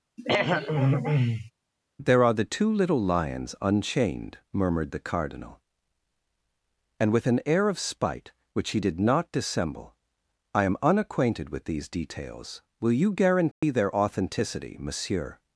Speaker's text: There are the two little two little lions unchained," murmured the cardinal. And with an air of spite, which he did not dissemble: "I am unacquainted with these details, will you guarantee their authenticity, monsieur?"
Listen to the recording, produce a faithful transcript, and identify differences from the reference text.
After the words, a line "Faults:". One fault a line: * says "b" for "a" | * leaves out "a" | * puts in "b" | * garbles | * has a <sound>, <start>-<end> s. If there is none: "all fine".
There are the two little lions unchained," murmured the cardinal. And with an air of spite, which he did not dissemble: "I am unacquainted with these details, will you guarantee their authenticity, monsieur?"
Faults:
* has a throat clearing, 0.2-1.5 s
* leaves out "two little"
* has a dropout, 13.5-13.6 s